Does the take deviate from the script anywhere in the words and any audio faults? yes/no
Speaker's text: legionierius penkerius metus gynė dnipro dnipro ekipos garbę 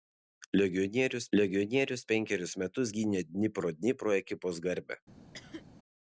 yes